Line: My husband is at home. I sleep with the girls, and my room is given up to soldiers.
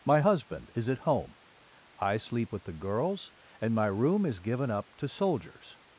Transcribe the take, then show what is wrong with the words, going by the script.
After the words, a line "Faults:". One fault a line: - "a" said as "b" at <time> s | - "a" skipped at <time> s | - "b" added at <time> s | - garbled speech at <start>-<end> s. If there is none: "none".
My husband is at home. I sleep with the girls, and my room is given up to soldiers.
Faults:
none